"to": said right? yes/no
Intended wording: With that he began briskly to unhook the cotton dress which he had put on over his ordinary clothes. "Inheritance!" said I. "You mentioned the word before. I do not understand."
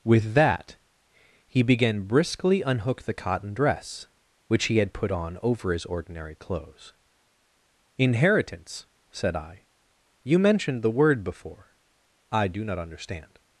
no